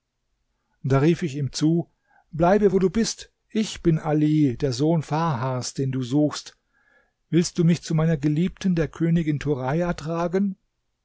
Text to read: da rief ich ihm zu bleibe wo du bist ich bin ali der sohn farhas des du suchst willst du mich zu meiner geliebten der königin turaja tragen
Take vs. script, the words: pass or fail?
fail